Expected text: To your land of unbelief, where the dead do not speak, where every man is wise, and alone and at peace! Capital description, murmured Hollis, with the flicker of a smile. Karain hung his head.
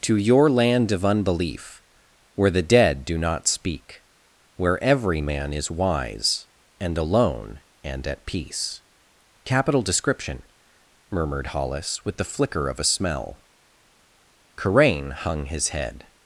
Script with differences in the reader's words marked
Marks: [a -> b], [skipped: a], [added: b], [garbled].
To your land of unbelief, where the dead do not speak, where every man is wise, and alone and at peace! Capital description, murmured Hollis, with the flicker of a [smile. -> smell] Karain hung his head.